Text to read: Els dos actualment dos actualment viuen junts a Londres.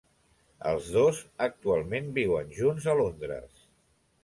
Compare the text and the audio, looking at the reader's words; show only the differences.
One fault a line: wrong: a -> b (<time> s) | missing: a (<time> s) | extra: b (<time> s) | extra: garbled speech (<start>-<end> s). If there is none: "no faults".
missing: dos actualment (2.1 s)